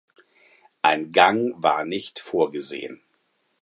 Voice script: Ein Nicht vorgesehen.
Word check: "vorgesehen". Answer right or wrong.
right